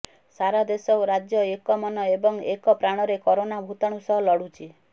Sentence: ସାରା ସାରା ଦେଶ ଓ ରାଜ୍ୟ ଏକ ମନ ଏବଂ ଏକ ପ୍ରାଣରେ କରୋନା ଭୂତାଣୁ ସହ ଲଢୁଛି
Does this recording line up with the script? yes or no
no